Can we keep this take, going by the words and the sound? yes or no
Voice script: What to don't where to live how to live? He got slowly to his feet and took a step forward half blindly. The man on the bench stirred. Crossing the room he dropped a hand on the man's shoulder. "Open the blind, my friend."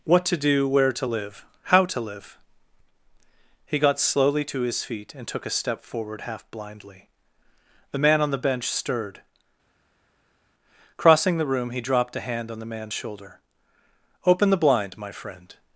no